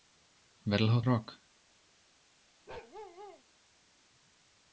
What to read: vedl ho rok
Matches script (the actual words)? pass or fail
pass